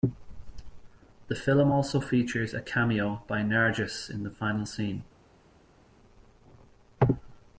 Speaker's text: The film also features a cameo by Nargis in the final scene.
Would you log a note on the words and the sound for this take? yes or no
no